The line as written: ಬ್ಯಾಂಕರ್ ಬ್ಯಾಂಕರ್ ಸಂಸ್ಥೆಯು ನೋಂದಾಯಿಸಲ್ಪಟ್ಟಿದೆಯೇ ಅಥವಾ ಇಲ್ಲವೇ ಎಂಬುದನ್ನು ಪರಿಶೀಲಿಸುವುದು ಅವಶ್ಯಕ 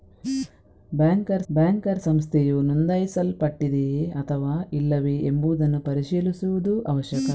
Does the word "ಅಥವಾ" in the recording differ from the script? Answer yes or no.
no